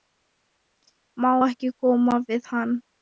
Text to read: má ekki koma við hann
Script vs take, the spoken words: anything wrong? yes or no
no